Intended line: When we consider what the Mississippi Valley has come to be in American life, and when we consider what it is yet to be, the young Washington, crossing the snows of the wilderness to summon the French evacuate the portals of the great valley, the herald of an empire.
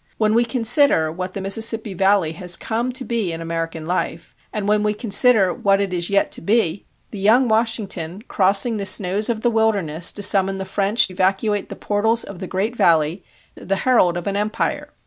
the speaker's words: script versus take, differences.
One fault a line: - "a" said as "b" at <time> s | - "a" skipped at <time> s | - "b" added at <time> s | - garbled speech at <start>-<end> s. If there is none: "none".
none